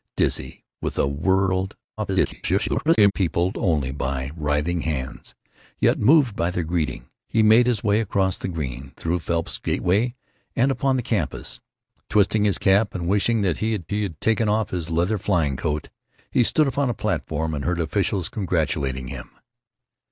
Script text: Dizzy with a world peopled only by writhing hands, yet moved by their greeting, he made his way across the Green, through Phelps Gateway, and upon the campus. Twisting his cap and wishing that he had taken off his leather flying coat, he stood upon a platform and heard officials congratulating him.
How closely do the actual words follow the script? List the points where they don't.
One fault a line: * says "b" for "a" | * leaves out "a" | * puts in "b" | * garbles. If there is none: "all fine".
* garbles
* puts in "he had"